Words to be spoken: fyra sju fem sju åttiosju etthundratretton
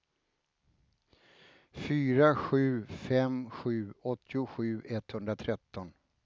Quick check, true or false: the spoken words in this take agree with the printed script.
true